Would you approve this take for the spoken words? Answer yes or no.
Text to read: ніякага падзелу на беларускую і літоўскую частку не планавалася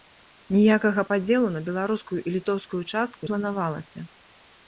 no